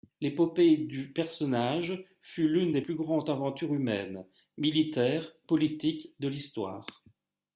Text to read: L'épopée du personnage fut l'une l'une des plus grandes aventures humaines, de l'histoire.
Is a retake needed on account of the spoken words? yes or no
yes